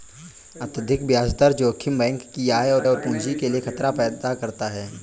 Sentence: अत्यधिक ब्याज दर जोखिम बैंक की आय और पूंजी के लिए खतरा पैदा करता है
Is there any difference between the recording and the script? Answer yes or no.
yes